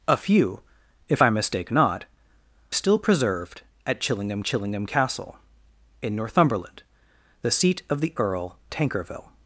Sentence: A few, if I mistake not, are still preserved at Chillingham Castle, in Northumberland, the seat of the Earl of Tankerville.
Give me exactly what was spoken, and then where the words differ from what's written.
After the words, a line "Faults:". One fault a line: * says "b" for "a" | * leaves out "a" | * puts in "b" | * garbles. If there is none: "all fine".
A few, if I mistake not, still preserved at Chillingham Chillingham Castle, in Northumberland, the seat of the Earl Tankerville.
Faults:
* leaves out "are"
* puts in "Chillingham"
* leaves out "of"